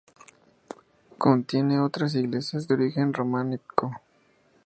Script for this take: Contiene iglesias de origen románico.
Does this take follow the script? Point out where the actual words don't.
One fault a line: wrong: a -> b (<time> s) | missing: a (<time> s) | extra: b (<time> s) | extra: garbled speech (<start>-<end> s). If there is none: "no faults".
extra: otras (1.8 s)